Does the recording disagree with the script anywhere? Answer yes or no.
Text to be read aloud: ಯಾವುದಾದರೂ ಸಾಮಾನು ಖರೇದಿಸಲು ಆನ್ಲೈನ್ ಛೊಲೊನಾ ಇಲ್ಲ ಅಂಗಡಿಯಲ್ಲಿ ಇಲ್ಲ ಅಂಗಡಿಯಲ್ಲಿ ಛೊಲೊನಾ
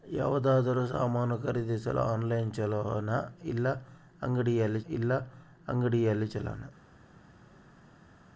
no